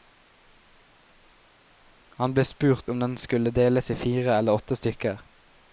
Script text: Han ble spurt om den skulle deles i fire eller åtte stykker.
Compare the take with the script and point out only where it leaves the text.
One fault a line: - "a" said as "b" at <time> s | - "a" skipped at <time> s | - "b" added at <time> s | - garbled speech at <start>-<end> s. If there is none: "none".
none